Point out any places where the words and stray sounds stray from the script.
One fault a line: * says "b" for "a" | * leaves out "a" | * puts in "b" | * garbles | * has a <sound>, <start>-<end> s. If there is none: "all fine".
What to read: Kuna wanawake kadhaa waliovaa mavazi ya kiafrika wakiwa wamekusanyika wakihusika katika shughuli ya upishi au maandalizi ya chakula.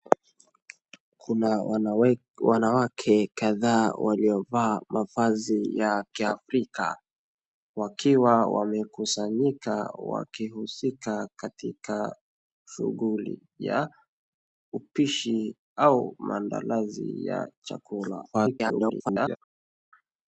* garbles